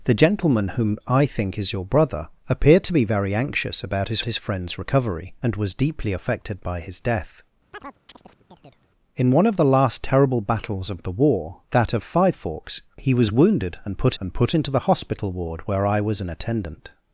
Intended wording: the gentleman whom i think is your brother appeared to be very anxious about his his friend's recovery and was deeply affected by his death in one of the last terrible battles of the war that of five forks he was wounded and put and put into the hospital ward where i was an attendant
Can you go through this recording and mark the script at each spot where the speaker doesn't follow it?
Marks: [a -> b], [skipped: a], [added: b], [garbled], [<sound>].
the gentleman whom i think is your brother appeared to be very anxious about his his friend's recovery and was deeply affected by his death [chirp] in one of the last terrible battles of the war that of five forks he was wounded and put and put into the hospital ward where i was an attendant